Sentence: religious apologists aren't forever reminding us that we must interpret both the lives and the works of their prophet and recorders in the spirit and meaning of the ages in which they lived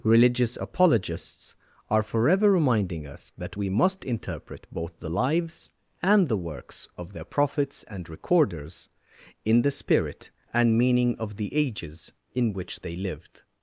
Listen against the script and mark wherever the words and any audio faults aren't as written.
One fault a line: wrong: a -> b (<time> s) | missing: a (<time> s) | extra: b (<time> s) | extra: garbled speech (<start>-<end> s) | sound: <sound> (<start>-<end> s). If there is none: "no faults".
wrong: aren't -> are (1.9 s)
wrong: prophet -> prophets (7.2 s)